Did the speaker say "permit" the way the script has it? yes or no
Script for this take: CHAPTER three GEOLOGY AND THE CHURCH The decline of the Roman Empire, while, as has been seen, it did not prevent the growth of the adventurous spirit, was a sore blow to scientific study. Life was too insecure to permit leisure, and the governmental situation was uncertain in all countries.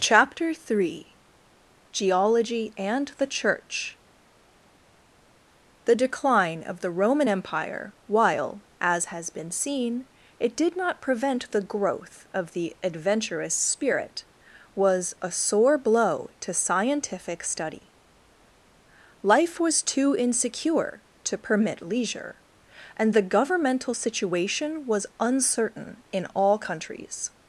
yes